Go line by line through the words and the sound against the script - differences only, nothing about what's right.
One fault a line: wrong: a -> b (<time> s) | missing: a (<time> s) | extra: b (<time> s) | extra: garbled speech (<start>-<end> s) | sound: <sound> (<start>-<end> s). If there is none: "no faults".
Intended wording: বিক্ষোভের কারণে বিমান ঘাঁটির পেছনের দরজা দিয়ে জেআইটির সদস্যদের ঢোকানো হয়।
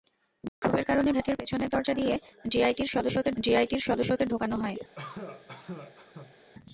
sound: dropout (0.5-0.6 s)
missing: বিমান (1.1 s)
extra: জেআইটির সদস্যদের (3.4 s)
sound: cough (4.9-6.3 s)